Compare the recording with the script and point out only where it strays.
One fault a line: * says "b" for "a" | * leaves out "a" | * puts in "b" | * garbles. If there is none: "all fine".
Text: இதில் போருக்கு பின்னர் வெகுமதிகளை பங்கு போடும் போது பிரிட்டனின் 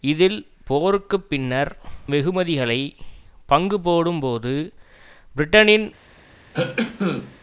all fine